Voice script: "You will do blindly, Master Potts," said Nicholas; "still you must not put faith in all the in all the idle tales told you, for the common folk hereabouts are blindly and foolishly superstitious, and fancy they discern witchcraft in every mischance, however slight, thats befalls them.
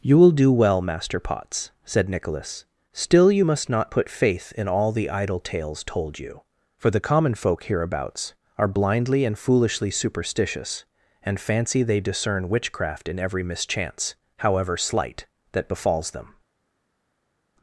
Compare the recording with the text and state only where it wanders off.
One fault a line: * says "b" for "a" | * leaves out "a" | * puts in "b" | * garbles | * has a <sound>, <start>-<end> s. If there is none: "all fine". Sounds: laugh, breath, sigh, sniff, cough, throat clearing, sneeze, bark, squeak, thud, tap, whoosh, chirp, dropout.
* says "well" for "blindly"
* leaves out "in all the"
* says "that" for "thats"